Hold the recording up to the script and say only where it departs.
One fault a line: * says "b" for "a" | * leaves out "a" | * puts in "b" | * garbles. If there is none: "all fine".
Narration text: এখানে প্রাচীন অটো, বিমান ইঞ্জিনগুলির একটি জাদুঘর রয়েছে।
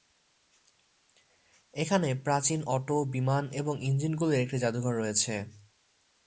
* puts in "এবং"